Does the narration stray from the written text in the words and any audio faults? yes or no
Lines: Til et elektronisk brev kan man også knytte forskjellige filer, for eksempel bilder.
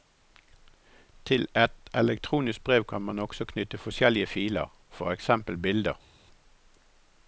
no